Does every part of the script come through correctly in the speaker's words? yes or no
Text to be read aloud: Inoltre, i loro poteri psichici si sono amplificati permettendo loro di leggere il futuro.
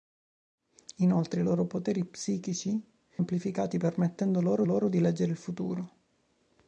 no